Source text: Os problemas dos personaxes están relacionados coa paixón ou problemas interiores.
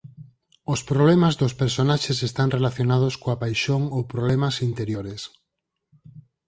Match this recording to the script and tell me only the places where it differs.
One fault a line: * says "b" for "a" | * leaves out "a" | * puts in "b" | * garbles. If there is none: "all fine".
all fine